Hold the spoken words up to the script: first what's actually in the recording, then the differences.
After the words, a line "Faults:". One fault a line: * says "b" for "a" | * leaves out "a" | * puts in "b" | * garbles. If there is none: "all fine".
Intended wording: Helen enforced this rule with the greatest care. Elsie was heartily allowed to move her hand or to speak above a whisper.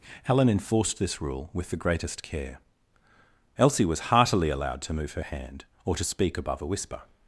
Helen enforced this rule with the greatest care. Elsie was heartily allowed to move her hand or to speak above a whisper.
Faults:
all fine